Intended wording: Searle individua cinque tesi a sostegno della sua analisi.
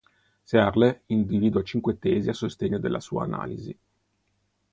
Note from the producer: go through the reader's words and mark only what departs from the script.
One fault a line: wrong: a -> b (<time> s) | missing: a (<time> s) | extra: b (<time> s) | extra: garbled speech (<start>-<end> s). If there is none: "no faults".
no faults